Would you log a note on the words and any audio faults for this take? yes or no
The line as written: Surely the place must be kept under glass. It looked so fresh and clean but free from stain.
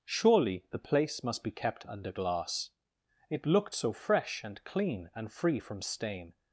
yes